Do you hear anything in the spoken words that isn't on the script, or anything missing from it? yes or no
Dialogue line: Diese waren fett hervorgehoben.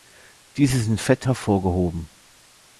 yes